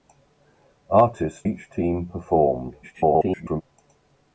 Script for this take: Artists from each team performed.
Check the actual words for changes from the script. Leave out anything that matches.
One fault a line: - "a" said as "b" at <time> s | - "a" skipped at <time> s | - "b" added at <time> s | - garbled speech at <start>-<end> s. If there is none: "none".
- "from" skipped at 1.5 s
- garbled speech at 2.8-3.6 s